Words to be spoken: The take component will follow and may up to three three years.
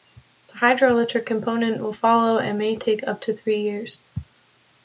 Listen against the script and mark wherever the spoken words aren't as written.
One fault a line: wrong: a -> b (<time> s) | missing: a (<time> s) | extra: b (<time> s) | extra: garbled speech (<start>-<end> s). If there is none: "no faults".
wrong: take -> hydroelectric (0.5 s)
extra: take (2.8 s)
missing: three (3.6 s)